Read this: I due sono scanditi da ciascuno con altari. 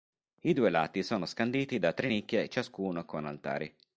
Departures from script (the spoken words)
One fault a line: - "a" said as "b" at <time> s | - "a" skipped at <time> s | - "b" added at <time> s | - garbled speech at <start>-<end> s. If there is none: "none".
- "lati" added at 0.7 s
- "tre nicchie" added at 1.9 s